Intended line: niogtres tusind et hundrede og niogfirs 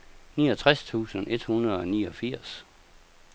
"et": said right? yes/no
yes